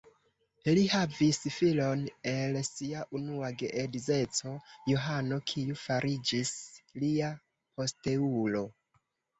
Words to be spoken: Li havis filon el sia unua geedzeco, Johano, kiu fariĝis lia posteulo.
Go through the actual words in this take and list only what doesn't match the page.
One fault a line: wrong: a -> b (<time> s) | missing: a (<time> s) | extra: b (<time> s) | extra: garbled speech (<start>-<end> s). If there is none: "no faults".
no faults